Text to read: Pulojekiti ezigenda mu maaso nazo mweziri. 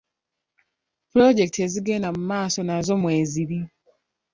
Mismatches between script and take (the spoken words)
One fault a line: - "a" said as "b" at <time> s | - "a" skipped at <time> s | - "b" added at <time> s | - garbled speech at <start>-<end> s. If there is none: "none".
none